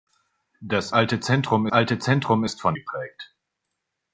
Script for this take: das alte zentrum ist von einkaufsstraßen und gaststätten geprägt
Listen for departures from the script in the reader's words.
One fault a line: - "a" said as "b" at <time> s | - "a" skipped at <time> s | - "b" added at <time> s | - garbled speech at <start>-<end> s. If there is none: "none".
- "alte zentrum" added at 1.7 s
- "einkaufsstraßen und gaststätten" skipped at 2.8 s